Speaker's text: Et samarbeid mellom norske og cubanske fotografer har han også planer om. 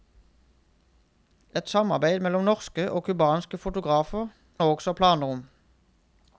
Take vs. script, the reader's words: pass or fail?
fail